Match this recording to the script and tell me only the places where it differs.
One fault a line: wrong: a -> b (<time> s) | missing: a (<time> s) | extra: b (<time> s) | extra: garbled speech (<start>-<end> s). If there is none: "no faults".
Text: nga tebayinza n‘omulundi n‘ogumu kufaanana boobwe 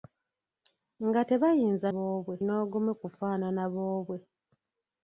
wrong: n‘omulundi -> boobwe (1.9 s)